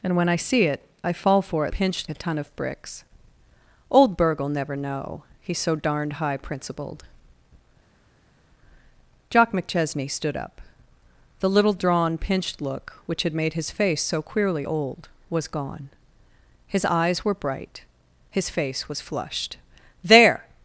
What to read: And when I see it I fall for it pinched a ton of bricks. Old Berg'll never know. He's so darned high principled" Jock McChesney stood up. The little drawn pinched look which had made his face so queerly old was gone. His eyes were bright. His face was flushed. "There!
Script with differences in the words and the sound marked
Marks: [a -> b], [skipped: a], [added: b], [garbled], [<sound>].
And when I see it I fall for it pinched a ton of bricks. Old Berg'll never know. He's so darned high principled" Jock McChesney stood up. The little drawn pinched look which had made his face so queerly old was gone. His eyes were bright. His face was flushed. "There!